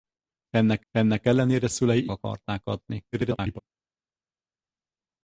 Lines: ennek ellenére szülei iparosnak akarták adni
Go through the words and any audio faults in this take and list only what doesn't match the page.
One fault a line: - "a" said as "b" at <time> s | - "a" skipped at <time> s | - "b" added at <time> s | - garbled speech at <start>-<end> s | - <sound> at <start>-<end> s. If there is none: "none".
- "ennek" added at 0.9 s
- "iparosnak" skipped at 2.1 s
- garbled speech at 3.1-3.6 s